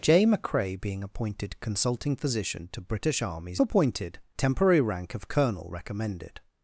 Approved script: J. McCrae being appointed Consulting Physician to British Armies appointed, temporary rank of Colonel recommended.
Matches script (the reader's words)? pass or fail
pass